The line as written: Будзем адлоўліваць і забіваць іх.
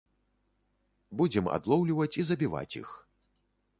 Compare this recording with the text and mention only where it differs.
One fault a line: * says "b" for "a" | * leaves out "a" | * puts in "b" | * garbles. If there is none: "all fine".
all fine